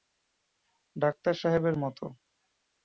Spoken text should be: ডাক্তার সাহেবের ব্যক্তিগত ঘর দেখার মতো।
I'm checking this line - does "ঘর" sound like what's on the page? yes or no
no